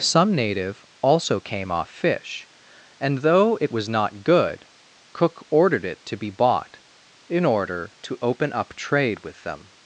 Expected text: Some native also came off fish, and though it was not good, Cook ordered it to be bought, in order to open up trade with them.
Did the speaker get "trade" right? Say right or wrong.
right